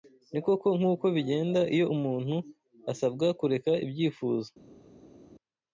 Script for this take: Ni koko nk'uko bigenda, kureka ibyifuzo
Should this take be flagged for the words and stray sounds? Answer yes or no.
yes